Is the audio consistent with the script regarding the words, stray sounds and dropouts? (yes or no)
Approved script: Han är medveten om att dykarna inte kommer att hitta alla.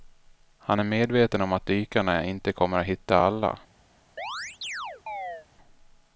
no